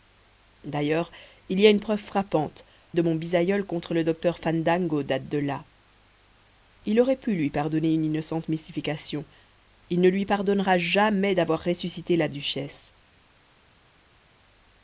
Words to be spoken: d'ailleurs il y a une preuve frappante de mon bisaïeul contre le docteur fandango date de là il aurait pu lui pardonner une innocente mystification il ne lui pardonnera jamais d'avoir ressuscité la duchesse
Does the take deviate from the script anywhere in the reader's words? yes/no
no